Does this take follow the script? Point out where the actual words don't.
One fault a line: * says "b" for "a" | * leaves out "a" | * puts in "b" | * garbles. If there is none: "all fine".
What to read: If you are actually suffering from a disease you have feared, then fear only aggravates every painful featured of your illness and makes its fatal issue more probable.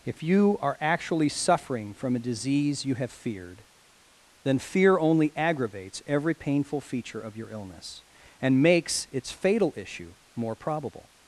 * says "feature" for "featured"